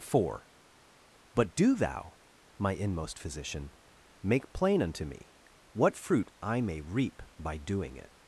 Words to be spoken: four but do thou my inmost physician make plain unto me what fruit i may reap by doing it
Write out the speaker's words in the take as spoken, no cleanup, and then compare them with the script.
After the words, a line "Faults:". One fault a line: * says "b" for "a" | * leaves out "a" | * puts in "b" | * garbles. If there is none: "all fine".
four but do thou my inmost physician make plain unto me what fruit i may reap by doing it
Faults:
all fine